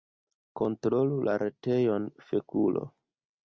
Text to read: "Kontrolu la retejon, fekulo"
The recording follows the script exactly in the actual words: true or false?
true